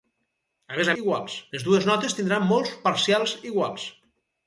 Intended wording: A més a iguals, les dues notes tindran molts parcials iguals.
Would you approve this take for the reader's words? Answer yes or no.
yes